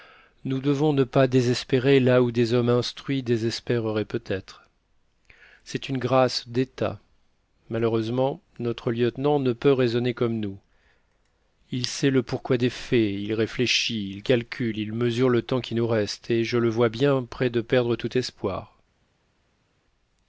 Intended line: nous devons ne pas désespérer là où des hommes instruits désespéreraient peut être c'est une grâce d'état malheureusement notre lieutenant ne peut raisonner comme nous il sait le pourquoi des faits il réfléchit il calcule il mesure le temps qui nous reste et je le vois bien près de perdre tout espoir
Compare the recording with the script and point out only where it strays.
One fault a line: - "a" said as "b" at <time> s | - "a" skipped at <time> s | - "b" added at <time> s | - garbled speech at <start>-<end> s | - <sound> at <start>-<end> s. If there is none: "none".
none